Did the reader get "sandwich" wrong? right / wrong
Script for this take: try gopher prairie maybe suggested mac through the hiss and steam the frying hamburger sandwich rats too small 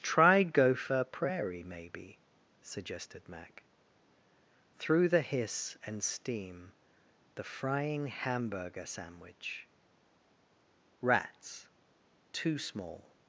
right